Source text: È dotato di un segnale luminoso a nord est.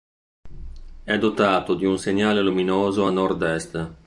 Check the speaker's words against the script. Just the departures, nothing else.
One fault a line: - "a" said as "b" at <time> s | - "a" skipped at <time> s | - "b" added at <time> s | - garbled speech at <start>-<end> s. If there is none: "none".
none